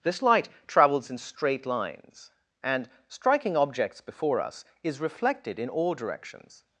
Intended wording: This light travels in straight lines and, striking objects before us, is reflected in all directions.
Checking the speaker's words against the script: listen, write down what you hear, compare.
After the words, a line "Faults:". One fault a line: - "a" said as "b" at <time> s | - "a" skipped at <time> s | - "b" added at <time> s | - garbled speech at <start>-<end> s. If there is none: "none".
This light travels in straight lines and, striking objects before us, is reflected in all directions.
Faults:
none